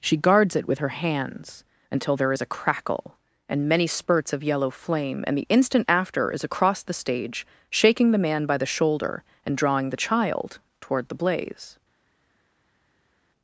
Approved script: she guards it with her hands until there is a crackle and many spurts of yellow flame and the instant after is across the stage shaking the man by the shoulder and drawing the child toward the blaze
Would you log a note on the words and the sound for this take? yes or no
no